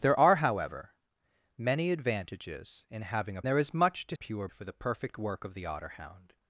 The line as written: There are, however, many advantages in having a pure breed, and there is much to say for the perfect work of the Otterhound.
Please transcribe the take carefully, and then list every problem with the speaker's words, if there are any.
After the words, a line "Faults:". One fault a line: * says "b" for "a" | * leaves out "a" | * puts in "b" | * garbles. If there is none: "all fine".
There are, however, many advantages in having a there is much to pure for the perfect work of the Otterhound.
Faults:
* leaves out "pure breed and"
* says "pure" for "say"